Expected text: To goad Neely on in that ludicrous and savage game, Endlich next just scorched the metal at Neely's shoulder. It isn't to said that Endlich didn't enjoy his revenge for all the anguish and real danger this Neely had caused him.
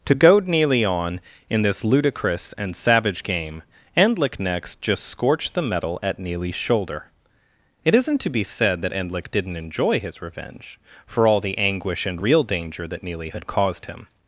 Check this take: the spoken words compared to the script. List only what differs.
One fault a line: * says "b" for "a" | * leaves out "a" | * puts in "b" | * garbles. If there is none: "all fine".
* says "this" for "that"
* puts in "be"
* says "that" for "this"